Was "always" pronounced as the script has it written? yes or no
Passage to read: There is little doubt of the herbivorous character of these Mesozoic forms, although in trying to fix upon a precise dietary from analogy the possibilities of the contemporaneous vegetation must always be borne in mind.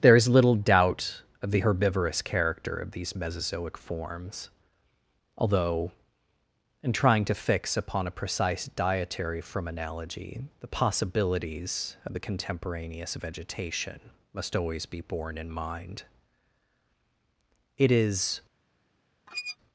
yes